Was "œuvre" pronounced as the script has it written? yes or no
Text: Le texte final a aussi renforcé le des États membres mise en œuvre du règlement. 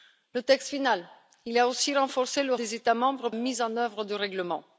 yes